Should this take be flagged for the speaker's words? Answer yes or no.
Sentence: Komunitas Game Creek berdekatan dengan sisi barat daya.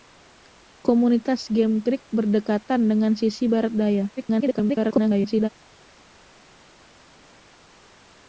yes